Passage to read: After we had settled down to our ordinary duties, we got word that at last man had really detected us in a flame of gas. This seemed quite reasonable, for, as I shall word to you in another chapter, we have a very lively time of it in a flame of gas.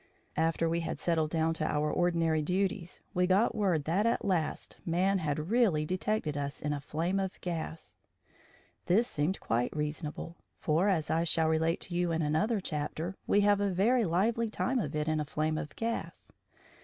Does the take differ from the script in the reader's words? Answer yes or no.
yes